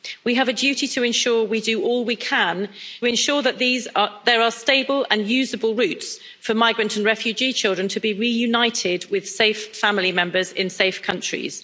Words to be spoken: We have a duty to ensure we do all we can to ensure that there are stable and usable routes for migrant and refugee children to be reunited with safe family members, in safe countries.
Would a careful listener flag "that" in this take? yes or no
no